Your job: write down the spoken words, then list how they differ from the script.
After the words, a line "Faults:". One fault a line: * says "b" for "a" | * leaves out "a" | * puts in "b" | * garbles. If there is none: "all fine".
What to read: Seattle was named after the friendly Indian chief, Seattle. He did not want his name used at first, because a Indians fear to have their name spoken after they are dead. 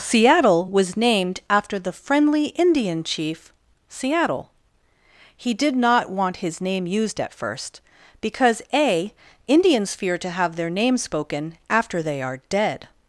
Seattle was named after the friendly Indian chief, Seattle. He did not want his name used at first, because a Indians fear to have their name spoken after they are dead.
Faults:
all fine